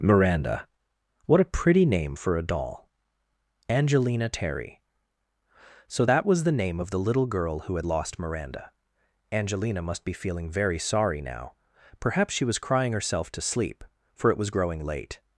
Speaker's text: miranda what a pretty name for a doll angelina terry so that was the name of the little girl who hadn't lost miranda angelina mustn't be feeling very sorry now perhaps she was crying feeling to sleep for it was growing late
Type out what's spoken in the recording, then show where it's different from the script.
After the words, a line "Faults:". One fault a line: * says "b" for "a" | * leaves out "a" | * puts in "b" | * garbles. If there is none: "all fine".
miranda what a pretty name for a doll angelina terry so that was the name of the little girl who had lost miranda angelina must be feeling very sorry now perhaps she was crying herself to sleep for it was growing late
Faults:
* says "had" for "hadn't"
* says "must" for "mustn't"
* says "herself" for "feeling"